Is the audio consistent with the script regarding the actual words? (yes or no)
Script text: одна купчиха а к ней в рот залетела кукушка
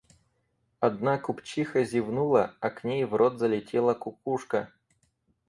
no